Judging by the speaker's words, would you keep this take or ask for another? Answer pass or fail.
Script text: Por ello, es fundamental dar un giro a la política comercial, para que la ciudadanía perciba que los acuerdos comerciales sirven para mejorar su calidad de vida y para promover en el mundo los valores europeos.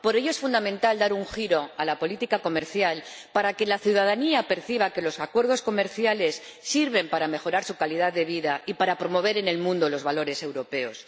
pass